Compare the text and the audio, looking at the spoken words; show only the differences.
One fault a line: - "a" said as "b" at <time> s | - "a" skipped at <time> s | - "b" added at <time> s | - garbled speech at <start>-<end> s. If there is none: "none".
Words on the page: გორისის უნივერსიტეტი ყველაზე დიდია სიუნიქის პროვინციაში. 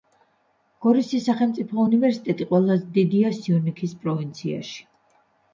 - "სახელმწიფო" added at 1.3 s